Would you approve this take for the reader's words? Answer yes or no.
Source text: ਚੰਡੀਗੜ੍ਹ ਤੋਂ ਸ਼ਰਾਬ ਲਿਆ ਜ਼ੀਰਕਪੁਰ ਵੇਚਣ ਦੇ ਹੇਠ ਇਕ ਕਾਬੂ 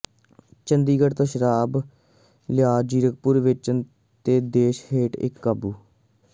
no